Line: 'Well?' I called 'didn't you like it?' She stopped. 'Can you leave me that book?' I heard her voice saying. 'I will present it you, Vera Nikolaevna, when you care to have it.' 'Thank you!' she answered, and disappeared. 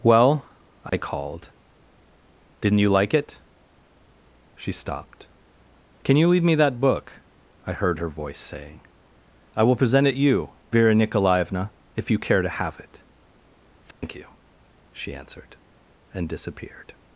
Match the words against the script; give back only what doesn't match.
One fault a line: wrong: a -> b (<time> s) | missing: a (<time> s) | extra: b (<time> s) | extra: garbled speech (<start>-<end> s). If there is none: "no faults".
wrong: when -> if (11.9 s)